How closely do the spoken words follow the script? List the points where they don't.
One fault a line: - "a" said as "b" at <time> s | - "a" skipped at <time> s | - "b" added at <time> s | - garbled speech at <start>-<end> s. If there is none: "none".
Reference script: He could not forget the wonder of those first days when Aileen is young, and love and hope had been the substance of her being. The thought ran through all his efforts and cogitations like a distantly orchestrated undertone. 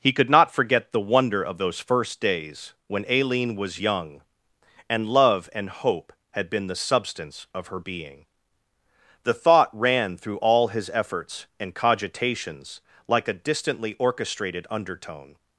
- "is" said as "was" at 3.5 s